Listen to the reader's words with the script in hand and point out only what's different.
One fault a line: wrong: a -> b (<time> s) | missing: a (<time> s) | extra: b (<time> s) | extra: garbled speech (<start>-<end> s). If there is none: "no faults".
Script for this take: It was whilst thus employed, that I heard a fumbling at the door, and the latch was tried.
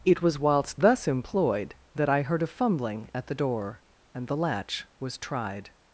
no faults